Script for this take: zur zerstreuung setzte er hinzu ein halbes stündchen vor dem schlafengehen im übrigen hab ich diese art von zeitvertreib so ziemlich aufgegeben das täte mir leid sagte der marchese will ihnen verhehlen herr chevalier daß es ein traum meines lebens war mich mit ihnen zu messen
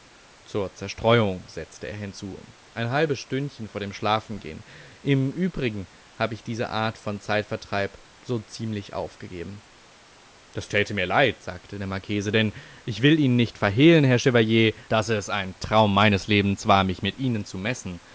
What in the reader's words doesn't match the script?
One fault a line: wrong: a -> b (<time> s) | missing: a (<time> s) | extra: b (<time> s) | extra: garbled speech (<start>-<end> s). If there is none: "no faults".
extra: denn ich (12.3 s)
extra: nicht (13.3 s)